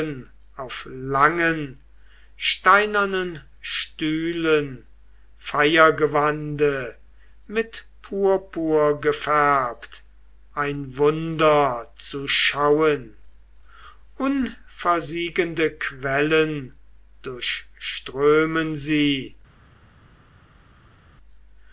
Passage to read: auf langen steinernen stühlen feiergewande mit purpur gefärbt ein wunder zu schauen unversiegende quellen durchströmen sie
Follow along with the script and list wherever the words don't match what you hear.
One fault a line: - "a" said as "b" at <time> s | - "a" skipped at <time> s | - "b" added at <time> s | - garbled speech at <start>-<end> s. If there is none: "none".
none